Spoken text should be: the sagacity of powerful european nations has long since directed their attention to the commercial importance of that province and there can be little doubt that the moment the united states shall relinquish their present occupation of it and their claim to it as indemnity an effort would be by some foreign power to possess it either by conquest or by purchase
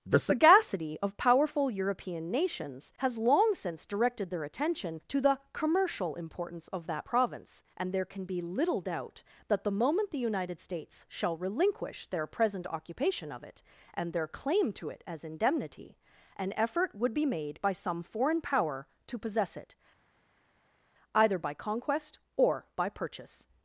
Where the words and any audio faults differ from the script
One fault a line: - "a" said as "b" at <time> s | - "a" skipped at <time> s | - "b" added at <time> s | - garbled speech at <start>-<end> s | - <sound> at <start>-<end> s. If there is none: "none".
- "made" added at 17.2 s